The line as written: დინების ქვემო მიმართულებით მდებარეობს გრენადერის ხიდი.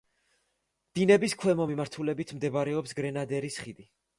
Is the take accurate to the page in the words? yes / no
yes